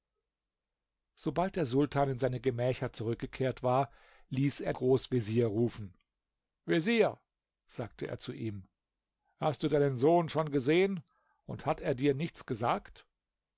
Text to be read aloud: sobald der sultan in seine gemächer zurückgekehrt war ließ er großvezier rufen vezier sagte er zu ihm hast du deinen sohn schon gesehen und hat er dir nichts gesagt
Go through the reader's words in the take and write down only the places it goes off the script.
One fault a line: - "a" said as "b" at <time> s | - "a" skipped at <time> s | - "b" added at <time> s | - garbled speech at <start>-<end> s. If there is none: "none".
none